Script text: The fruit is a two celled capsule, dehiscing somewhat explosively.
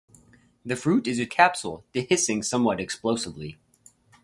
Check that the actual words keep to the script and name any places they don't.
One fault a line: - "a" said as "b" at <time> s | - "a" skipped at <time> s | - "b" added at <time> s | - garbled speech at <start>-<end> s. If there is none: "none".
- "two celled" skipped at 1.3 s